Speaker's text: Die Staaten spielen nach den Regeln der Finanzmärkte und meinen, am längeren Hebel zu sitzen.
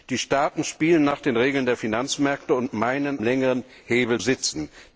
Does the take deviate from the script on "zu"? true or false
true